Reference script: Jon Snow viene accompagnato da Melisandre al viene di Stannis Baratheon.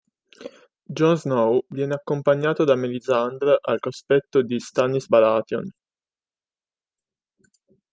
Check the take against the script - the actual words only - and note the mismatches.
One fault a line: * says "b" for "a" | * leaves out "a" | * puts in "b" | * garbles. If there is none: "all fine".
* says "cospetto" for "viene"